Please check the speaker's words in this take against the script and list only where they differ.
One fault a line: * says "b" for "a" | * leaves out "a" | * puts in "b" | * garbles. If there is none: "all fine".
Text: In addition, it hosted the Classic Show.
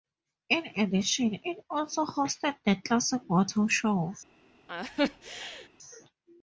* puts in "also"
* puts in "Motor"